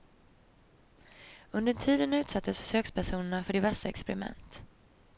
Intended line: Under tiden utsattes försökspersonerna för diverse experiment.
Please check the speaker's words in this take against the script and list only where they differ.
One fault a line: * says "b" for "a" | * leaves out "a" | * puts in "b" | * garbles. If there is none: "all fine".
all fine